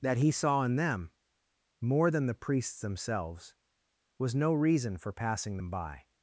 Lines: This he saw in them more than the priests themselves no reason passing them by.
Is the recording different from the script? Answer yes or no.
yes